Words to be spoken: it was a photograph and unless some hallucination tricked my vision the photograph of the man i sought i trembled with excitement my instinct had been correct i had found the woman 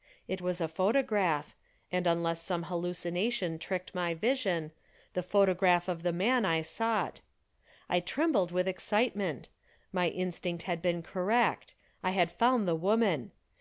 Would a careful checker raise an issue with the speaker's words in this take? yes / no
no